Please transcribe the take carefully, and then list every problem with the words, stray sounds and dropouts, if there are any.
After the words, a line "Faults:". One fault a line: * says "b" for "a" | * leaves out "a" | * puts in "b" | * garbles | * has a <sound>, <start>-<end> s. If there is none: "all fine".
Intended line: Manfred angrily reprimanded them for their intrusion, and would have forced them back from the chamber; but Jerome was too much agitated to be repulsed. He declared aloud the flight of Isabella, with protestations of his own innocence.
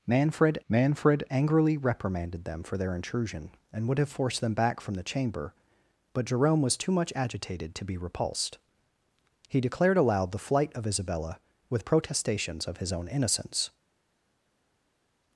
Manfred manfred angrily reprimanded them for their intrusion, and would have forced them back from the chamber; but Jerome was too much agitated to be repulsed. He declared aloud the flight of Isabella, with protestations of his own innocence.
Faults:
* puts in "manfred"